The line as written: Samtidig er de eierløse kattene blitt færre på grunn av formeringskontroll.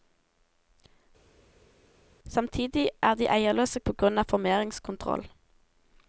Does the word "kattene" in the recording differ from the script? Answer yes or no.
yes